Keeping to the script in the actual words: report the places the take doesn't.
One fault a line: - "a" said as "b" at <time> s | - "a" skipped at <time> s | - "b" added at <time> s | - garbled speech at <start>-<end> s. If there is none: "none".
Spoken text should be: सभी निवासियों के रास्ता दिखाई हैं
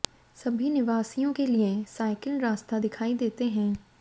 - "लिए साइकिल" added at 1.5 s
- "देते" added at 3.2 s